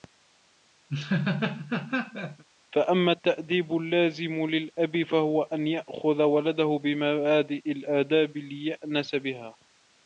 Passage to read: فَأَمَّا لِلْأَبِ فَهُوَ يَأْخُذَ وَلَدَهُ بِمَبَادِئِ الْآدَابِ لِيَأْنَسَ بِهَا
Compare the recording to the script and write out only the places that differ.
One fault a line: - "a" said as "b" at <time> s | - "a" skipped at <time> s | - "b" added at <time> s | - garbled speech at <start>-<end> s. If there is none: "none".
- "التَّأْدِيبُ اللَّازِمُ" added at 3.1 s
- "أَنْ" added at 5.4 s